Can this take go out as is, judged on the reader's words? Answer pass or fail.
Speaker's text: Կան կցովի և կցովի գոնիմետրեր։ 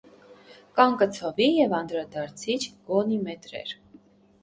fail